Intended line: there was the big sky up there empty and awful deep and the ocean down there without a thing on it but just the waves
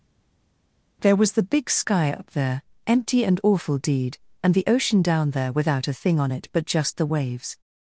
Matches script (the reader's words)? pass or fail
fail